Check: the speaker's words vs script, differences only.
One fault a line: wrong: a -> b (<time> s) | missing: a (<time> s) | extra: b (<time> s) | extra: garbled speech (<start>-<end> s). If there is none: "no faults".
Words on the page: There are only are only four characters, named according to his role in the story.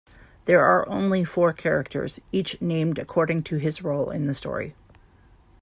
missing: are only (1.2 s)
extra: each (2.3 s)